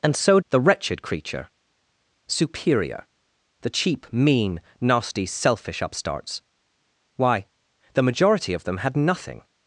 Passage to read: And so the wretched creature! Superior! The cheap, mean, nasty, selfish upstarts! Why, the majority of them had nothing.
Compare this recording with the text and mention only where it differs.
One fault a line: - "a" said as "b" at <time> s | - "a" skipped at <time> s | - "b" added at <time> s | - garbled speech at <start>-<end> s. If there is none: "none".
none